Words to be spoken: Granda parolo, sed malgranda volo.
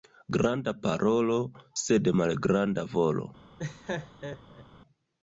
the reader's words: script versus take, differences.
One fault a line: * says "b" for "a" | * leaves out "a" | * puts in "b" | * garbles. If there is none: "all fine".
all fine